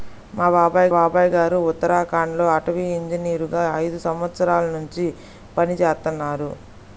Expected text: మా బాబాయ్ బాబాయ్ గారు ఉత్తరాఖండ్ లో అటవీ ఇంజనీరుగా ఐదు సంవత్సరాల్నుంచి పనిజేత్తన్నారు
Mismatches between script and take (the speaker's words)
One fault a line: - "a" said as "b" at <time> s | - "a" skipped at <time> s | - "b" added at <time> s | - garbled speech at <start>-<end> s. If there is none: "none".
none